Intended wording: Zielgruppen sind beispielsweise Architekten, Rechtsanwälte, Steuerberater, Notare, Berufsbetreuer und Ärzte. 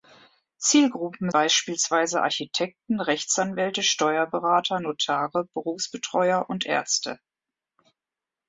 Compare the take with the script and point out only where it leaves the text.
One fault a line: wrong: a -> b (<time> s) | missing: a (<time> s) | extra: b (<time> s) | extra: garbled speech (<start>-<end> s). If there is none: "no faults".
missing: sind (1.3 s)